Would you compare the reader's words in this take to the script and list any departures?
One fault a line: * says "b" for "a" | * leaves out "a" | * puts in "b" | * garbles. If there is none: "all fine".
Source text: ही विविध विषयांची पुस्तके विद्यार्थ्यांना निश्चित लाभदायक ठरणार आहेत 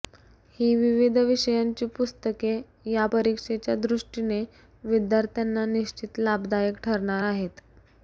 * puts in "या परीक्षेच्या दृष्टीने"